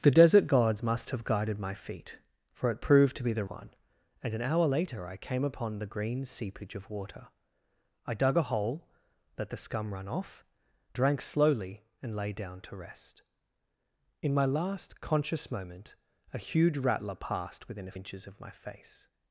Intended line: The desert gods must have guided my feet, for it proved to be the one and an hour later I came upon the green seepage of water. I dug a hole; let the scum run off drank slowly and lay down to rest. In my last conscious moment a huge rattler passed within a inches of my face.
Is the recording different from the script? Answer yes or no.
no